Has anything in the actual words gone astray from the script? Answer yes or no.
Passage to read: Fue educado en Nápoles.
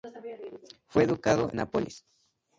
yes